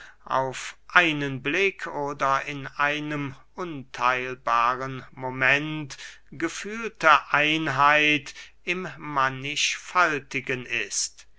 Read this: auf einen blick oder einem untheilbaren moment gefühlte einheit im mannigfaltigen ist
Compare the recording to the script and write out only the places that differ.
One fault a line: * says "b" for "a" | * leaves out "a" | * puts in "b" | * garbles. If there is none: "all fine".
* puts in "in"